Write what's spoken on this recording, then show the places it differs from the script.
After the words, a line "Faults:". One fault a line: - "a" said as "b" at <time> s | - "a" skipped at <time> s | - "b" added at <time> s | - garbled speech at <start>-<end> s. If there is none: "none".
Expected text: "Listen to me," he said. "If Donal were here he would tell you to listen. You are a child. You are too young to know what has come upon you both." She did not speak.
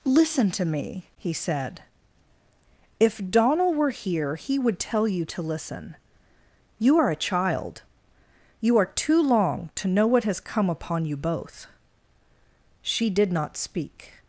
"Listen to me," he said. "If Donal were here he would tell you to listen. You are a child. You are too long to know what has come upon you both." She did not speak.
Faults:
- "young" said as "long" at 9.2 s